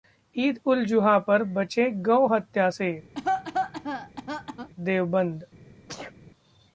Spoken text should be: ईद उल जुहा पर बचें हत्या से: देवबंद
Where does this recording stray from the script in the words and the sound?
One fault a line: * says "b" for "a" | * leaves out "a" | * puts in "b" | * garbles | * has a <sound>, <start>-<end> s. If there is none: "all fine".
* puts in "गौ"
* has a cough, 3.2-4.7 s
* has a sneeze, 5.9-6.1 s